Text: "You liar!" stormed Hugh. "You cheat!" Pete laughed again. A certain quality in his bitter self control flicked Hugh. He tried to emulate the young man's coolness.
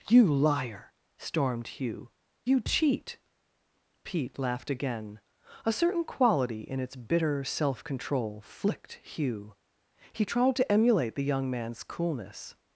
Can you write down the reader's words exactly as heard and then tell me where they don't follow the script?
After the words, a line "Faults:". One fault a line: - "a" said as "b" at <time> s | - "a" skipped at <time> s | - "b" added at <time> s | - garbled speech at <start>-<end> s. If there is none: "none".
"You liar!" stormed Hugh. "You cheat!" Pete laughed again. A certain quality in its bitter self control flicked Hugh. He tried to emulate the young man's coolness.
Faults:
- "his" said as "its" at 6.8 s